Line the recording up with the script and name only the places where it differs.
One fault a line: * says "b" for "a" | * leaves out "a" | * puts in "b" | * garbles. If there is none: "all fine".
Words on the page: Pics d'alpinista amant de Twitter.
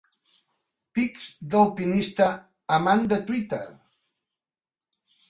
all fine